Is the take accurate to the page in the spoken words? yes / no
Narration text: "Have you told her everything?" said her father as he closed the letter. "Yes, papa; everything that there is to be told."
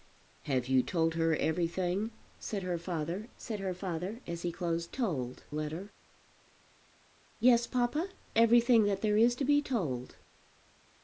no